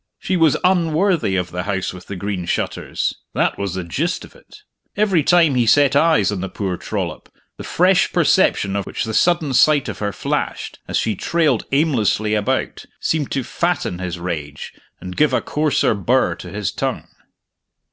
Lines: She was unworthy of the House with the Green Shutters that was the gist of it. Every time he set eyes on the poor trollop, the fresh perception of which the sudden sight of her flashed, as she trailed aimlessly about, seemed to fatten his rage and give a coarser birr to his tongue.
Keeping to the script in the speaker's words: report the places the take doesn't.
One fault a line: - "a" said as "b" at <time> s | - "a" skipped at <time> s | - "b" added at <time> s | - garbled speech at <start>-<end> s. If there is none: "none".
none